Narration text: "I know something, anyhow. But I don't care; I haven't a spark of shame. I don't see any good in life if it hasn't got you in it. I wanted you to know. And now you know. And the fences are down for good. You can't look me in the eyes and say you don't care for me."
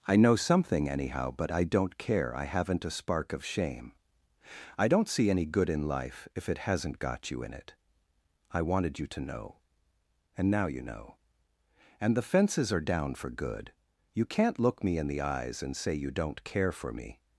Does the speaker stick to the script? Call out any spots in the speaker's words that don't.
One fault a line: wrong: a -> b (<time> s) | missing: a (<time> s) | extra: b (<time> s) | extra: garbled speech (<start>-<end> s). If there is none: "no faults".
no faults